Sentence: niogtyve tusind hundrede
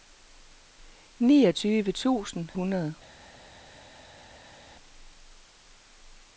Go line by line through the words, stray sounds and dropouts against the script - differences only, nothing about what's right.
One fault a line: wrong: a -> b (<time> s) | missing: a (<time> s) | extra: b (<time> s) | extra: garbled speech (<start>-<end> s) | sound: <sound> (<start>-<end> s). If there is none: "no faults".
no faults